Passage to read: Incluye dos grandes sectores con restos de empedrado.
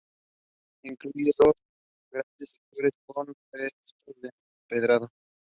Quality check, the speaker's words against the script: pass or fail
pass